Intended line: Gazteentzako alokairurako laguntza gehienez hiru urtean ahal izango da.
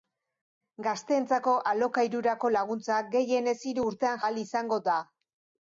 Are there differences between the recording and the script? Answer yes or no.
no